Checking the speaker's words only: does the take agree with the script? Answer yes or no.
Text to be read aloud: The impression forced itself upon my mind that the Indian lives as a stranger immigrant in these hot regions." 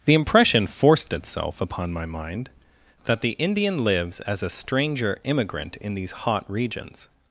yes